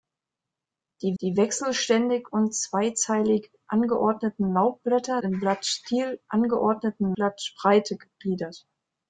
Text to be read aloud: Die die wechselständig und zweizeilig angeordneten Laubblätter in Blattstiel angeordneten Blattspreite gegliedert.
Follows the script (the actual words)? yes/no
yes